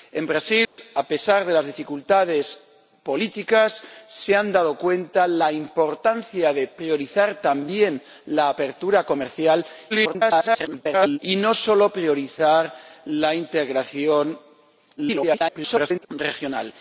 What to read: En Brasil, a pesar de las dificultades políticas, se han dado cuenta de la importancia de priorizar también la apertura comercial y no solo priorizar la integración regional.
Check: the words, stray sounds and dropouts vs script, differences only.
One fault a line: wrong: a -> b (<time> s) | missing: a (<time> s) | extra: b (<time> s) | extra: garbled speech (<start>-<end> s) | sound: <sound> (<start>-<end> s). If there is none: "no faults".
sound: dropout (0.7-0.8 s)
extra: garbled speech (9.9-11.2 s)
extra: garbled speech (15.0-16.1 s)